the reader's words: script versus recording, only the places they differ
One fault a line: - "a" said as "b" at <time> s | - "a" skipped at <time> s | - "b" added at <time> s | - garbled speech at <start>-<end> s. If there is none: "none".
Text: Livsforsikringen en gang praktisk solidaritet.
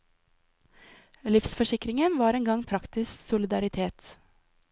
- "var" added at 2.2 s